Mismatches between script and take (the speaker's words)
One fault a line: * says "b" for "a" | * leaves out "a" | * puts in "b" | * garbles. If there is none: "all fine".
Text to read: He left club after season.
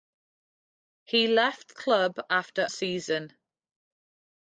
all fine